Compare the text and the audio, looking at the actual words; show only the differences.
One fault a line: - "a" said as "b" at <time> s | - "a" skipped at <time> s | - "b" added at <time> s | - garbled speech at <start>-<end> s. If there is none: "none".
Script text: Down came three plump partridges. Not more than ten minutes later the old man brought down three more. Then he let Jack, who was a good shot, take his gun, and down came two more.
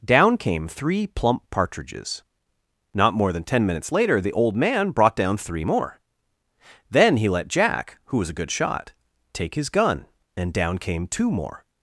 none